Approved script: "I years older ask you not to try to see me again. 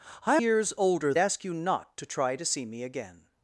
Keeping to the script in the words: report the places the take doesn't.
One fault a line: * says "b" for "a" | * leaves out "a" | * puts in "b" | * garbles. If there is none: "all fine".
all fine